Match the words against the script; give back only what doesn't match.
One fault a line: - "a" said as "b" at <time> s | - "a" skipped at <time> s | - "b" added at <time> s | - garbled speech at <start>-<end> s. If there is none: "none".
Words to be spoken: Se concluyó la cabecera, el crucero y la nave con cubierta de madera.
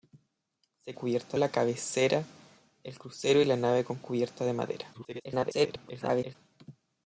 - "concluyó" said as "cubierta" at 0.9 s
- garbled speech at 4.9-6.4 s